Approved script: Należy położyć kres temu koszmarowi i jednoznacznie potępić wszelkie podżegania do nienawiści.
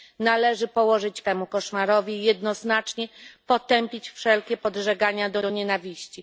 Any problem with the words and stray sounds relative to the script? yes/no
yes